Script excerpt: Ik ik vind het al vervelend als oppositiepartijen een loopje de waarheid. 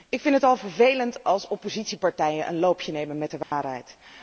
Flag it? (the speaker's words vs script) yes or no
yes